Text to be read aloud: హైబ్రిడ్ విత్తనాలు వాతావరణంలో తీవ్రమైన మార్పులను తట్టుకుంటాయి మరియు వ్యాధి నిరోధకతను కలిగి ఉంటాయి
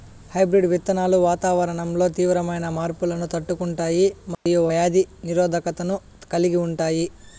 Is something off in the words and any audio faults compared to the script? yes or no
yes